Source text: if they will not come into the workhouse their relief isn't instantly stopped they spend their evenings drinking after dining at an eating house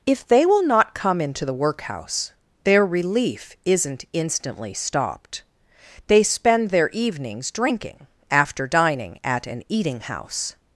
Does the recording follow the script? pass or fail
pass